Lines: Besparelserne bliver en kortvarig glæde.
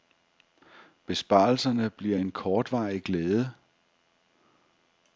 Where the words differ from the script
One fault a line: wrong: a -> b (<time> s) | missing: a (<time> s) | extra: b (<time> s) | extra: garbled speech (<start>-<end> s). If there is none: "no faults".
no faults